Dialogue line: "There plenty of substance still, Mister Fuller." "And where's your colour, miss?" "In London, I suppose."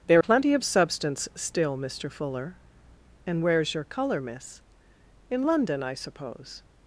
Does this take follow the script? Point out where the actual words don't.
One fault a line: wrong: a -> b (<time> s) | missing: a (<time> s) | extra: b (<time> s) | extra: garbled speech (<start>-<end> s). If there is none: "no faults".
no faults